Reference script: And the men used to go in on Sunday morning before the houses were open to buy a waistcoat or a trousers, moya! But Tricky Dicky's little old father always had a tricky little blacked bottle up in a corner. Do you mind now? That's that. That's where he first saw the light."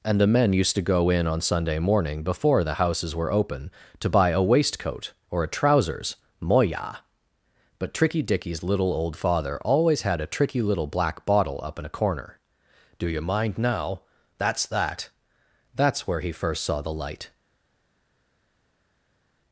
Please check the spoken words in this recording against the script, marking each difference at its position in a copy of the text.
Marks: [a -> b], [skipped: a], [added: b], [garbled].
And the men used to go in on Sunday morning before the houses were open to buy a waistcoat or a trousers, moya! But Tricky Dicky's little old father always had a tricky little [blacked -> black] bottle up in a corner. Do you mind now? That's that. That's where he first saw the light."